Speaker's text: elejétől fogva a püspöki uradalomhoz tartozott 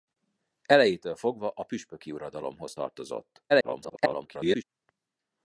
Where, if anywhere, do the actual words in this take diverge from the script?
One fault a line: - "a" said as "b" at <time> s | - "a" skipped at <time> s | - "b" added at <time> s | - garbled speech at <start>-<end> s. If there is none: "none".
- garbled speech at 3.5-4.6 s